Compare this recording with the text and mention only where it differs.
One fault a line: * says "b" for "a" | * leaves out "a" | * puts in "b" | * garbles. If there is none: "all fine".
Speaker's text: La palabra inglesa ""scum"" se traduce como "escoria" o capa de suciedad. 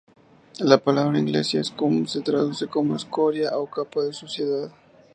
all fine